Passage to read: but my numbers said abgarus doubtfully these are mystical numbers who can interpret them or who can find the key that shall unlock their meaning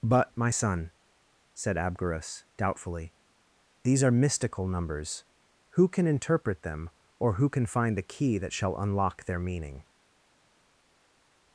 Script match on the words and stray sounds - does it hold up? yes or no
no